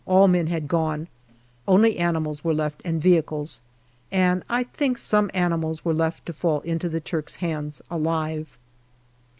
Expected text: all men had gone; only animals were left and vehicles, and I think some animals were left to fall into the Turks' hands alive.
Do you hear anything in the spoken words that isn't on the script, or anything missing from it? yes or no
no